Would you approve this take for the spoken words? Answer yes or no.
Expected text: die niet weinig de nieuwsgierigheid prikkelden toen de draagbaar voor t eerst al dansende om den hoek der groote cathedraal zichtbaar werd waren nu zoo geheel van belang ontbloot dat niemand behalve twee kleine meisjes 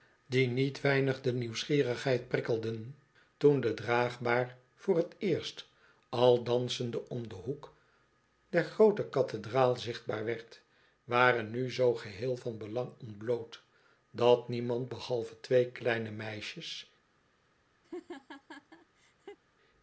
yes